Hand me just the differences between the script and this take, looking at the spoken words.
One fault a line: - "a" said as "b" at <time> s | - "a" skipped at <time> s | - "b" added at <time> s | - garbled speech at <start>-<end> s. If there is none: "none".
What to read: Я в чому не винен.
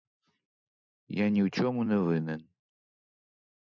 - "ні" added at 1.3 s